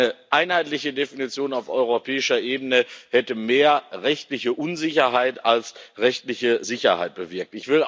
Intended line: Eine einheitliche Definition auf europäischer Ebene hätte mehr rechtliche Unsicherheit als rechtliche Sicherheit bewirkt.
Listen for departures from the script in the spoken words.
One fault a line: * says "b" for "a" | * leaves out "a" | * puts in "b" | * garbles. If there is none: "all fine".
all fine